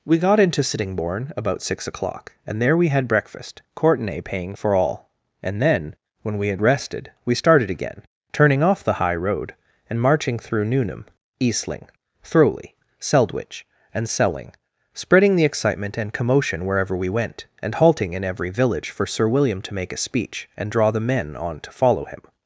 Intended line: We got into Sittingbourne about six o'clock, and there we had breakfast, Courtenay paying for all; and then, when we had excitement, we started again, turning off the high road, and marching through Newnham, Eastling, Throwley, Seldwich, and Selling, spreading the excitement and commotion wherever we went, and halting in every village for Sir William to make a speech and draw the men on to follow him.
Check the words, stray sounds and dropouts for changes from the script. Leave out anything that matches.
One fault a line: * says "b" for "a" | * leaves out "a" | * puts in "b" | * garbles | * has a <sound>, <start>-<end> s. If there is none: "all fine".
* says "rested" for "excitement"